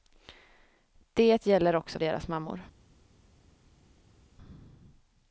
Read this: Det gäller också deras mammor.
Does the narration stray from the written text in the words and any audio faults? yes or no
no